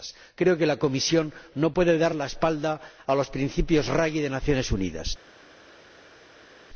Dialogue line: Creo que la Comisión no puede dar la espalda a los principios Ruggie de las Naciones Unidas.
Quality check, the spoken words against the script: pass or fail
pass